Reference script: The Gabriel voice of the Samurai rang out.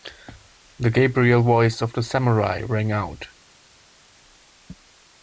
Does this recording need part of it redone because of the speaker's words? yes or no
no